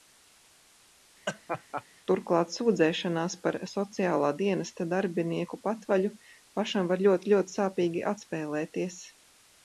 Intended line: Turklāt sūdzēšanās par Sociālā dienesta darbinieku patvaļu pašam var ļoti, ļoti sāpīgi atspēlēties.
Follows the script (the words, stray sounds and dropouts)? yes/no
no